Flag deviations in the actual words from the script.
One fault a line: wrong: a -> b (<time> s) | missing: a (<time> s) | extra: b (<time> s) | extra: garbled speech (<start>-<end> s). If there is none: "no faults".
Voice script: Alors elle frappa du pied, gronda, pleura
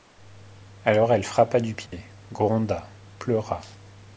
no faults